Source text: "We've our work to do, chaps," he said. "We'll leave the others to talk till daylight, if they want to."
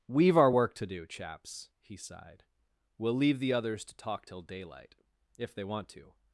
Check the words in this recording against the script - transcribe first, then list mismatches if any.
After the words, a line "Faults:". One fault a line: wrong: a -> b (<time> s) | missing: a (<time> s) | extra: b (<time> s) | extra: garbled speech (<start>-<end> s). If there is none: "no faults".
"We've our work to do, chaps," he sighed. "We'll leave the others to talk till daylight, if they want to."
Faults:
wrong: said -> sighed (2.0 s)